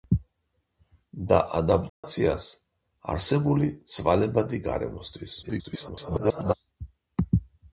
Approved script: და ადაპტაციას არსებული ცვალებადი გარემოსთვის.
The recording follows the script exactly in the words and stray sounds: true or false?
false